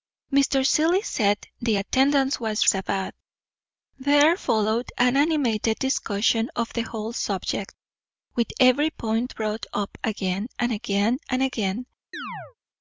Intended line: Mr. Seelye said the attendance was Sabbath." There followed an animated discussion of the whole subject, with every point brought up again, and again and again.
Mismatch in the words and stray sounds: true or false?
true